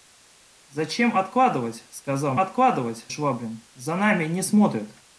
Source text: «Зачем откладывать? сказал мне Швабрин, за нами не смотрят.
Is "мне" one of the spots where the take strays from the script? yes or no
yes